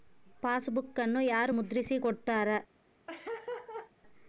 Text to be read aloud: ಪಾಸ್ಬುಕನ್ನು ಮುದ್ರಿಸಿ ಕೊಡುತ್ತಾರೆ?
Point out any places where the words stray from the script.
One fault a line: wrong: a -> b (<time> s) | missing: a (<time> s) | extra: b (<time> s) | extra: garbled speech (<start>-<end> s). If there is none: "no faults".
extra: ಯಾರು (1.2 s)